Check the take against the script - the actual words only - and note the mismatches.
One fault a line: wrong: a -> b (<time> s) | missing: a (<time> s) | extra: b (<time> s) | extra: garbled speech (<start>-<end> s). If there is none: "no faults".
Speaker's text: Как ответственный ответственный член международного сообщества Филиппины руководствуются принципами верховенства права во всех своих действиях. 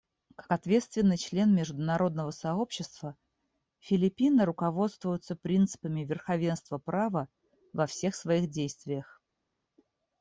missing: ответственный (1.2 s)